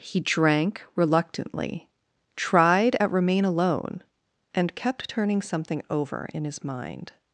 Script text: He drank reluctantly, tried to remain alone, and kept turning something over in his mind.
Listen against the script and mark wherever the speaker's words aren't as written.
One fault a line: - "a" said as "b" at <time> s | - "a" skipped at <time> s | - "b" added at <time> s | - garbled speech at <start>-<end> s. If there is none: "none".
- "to" said as "at" at 3.0 s